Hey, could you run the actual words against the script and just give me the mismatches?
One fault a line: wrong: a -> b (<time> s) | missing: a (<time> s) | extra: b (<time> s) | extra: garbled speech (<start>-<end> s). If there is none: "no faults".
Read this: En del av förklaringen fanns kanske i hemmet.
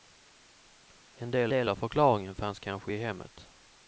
extra: del (1.5 s)